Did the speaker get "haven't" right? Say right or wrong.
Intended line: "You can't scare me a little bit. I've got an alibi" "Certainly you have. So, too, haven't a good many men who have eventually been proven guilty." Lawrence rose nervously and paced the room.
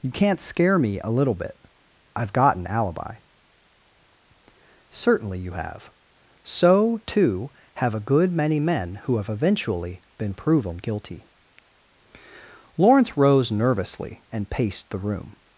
wrong